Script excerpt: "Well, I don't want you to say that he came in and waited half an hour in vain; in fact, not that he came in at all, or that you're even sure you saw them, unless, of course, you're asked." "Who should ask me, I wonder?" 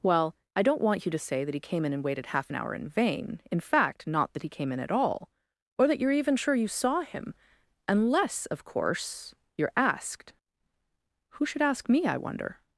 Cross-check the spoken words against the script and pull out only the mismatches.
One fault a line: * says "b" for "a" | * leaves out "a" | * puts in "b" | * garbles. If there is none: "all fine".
* says "him" for "them"